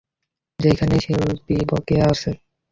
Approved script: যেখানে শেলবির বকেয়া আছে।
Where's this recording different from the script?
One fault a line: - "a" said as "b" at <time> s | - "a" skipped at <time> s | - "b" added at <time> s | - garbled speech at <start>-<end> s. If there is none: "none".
none